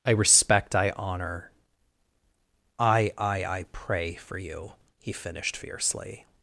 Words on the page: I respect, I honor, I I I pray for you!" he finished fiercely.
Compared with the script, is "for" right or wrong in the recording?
right